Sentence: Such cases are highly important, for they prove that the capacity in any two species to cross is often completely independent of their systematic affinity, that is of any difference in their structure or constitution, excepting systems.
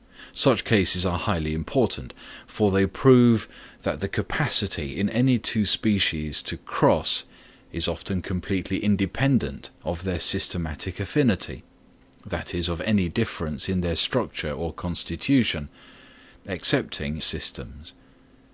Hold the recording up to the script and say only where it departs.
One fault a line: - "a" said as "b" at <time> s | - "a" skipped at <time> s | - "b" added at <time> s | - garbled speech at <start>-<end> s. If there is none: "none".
none